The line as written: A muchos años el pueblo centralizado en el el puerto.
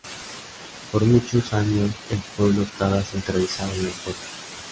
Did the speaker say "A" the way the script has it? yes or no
no